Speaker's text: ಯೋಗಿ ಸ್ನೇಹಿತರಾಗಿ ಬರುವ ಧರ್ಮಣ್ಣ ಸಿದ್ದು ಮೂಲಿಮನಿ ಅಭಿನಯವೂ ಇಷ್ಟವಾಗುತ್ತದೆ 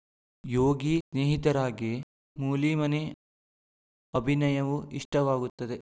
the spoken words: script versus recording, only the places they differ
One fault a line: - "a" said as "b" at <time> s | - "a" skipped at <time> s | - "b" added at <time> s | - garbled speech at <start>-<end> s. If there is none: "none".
- "ಬರುವ ಧರ್ಮಣ್ಣ ಸಿದ್ದು" skipped at 1.9 s